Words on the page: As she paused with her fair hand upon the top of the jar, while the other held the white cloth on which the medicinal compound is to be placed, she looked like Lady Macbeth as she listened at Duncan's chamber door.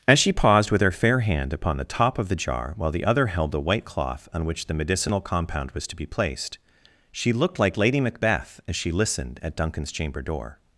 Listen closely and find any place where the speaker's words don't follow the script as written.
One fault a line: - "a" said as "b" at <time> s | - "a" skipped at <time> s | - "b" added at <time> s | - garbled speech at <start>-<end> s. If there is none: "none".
- "is" said as "was" at 5.7 s